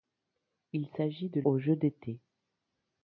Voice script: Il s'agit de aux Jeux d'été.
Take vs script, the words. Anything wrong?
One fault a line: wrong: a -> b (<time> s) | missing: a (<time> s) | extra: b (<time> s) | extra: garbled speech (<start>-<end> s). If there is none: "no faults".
no faults